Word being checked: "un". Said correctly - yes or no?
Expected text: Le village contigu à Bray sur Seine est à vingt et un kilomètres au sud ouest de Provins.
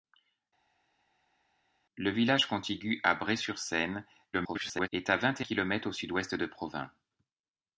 no